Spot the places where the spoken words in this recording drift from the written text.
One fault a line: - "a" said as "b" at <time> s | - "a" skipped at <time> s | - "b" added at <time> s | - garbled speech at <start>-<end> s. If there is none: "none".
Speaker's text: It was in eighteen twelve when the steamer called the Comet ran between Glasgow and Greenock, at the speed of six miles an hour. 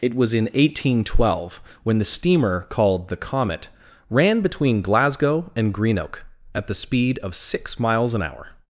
none